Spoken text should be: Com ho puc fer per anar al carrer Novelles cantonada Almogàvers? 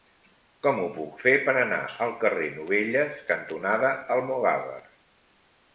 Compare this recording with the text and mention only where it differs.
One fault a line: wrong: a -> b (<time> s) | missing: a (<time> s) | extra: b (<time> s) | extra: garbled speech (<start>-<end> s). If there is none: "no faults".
no faults